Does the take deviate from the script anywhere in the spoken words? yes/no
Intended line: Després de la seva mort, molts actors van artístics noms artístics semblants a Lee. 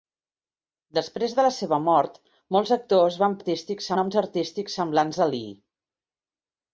no